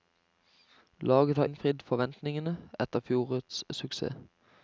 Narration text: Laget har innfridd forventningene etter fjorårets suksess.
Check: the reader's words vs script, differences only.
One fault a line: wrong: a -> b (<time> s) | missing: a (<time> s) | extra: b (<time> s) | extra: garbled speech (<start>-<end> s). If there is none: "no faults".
no faults